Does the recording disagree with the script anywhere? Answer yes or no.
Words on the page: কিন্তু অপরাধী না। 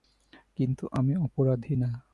yes